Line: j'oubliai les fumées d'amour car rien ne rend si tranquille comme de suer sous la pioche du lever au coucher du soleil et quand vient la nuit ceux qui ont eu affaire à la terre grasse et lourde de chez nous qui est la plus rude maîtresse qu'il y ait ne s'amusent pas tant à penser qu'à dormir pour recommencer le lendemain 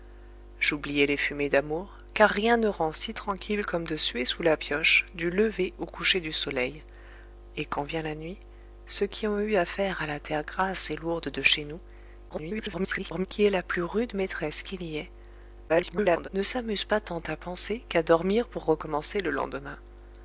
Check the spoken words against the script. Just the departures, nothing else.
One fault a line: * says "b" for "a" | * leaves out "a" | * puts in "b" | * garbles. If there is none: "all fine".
* garbles
* garbles